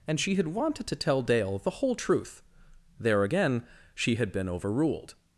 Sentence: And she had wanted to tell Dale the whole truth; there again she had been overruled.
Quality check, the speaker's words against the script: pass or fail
pass